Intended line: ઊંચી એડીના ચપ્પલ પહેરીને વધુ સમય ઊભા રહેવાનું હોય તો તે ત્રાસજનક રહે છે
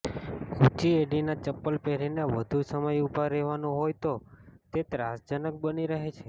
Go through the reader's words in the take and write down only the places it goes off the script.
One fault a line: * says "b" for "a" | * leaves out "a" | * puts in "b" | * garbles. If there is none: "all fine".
* puts in "બની"